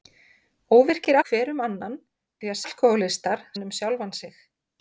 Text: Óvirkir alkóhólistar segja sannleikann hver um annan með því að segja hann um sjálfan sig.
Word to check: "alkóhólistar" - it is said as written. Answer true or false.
false